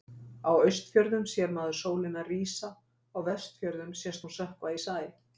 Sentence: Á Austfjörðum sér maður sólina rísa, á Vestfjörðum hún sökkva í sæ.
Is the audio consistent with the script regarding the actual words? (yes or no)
no